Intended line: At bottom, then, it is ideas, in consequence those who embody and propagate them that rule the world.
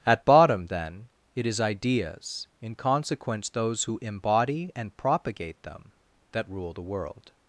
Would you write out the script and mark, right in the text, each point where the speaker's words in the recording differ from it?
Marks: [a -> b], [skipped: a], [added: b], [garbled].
At bottom, then, it is ideas, in consequence those who embody and propagate them that rule the world.